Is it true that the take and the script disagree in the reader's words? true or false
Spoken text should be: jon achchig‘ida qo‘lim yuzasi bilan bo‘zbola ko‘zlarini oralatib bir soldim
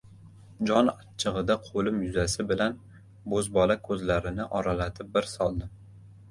false